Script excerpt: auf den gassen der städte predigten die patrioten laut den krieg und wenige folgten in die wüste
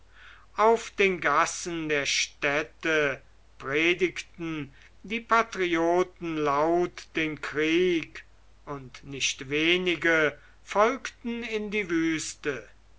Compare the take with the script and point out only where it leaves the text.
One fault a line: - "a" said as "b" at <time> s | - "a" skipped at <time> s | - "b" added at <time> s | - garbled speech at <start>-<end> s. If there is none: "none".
- "nicht" added at 9.0 s